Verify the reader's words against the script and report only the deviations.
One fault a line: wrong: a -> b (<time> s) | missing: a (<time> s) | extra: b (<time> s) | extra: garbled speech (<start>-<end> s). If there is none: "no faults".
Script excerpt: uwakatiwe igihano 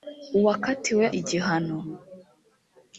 no faults